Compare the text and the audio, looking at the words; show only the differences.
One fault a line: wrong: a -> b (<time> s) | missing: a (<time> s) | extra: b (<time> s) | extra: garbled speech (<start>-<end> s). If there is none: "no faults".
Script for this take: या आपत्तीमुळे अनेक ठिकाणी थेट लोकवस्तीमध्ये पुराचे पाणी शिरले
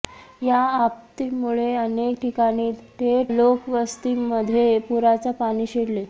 no faults